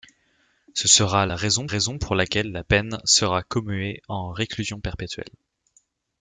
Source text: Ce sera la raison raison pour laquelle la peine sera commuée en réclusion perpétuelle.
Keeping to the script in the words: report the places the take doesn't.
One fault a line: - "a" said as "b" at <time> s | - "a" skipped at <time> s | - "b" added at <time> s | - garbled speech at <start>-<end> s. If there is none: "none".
none